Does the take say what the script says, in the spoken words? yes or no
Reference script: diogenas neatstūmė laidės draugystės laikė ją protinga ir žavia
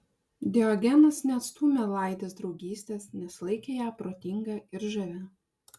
no